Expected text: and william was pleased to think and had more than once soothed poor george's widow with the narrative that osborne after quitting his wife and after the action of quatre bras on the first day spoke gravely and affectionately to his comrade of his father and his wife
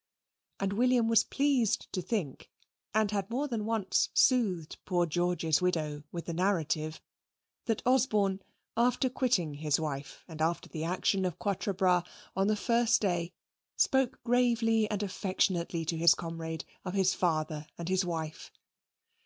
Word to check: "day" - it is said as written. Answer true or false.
true